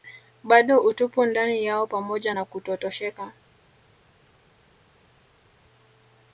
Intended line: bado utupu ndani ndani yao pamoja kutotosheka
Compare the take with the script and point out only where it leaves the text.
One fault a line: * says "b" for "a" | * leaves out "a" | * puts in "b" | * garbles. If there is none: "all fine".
* leaves out "ndani"
* puts in "na"